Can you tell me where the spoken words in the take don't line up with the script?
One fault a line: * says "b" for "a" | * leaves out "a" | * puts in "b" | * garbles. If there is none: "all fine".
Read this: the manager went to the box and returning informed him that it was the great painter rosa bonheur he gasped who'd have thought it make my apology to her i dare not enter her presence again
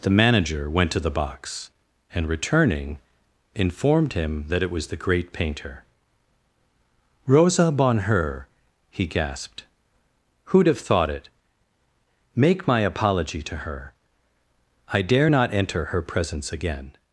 all fine